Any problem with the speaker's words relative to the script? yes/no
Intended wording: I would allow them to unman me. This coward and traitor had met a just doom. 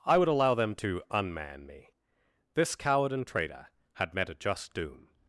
no